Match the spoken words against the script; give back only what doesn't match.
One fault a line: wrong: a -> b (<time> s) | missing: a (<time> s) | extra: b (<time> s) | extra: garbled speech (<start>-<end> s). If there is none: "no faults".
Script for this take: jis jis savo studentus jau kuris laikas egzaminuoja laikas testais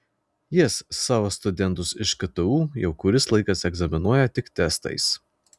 missing: jis (0.8 s)
extra: iš ktu (2.0 s)
wrong: laikas -> tik (4.4 s)